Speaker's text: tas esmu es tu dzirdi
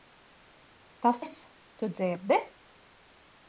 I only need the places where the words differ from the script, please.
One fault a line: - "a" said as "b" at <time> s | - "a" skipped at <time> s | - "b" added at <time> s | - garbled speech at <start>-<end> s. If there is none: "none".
- "esmu" skipped at 1.2 s